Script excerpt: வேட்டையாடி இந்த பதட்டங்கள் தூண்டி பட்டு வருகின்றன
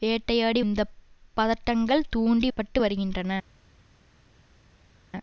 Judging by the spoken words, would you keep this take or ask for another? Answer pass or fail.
pass